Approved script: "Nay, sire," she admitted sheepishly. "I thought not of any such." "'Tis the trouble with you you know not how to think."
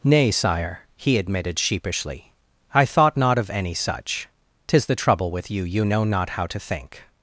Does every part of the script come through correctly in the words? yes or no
no